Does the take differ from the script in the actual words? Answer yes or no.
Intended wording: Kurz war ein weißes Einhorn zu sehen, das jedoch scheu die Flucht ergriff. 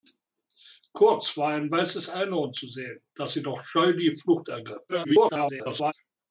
yes